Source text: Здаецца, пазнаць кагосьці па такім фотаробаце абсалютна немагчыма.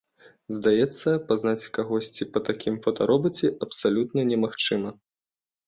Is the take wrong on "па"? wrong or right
right